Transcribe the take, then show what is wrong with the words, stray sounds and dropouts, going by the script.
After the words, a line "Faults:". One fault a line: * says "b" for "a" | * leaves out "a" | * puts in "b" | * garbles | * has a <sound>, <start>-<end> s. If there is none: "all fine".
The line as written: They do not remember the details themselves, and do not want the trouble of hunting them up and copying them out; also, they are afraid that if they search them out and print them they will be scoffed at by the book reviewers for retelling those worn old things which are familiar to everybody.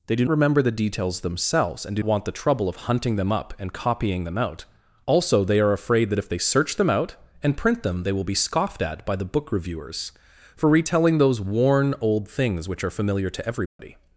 They do remember the details themselves, and do want the trouble of hunting them up and copying them out; also, they are afraid that if they search them out and print them they will be scoffed at by the book reviewers for retelling those worn old things which are familiar to everybody.
Faults:
* leaves out "not"
* leaves out "not"
* has a dropout, 13.7-13.8 s